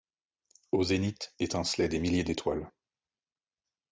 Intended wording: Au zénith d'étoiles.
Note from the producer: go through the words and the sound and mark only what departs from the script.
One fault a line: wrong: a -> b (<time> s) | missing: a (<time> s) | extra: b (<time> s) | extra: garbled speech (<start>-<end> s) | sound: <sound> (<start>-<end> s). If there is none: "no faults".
extra: étincelaient des milliers (1.4 s)